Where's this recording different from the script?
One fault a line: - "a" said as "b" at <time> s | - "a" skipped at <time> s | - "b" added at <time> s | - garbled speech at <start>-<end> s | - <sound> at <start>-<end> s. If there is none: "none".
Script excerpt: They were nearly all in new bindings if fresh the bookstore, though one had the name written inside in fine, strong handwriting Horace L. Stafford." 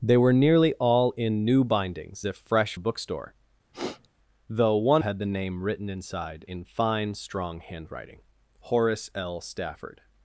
- sniff at 3.7-4.1 s